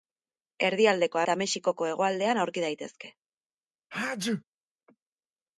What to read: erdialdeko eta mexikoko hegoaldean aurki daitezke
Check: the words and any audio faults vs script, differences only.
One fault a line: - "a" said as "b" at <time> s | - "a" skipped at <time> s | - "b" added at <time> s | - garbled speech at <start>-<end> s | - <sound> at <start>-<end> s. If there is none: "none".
- sneeze at 3.9-4.4 s